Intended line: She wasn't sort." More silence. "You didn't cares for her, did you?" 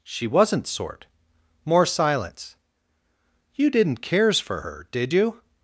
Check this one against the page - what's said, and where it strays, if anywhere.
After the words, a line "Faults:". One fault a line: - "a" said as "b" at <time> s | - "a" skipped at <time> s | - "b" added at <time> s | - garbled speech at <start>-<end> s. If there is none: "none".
She wasn't sort." More silence. "You didn't cares for her, did you?"
Faults:
none